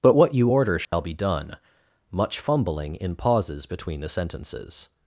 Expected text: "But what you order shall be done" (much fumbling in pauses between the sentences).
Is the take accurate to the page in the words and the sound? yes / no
no